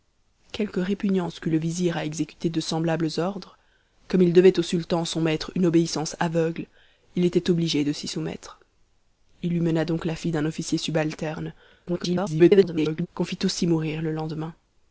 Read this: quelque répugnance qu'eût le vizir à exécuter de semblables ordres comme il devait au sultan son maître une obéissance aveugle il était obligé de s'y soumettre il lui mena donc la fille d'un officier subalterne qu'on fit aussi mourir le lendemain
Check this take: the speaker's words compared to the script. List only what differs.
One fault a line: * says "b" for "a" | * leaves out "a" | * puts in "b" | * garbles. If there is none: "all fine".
* garbles